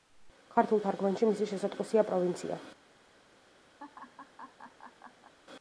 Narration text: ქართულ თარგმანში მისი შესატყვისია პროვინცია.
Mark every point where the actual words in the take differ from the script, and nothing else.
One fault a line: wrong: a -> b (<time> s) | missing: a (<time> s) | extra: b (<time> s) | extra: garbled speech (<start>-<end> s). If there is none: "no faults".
no faults